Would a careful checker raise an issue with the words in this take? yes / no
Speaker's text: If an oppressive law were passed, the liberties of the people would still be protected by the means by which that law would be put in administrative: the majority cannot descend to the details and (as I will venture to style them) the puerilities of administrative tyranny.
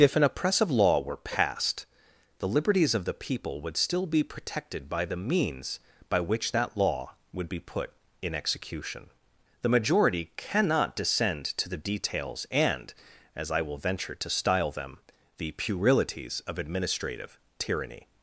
yes